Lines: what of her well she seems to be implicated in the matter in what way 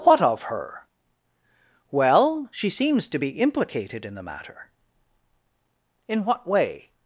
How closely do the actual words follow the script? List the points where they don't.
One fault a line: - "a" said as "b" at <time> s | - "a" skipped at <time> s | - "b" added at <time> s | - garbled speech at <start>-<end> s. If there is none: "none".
none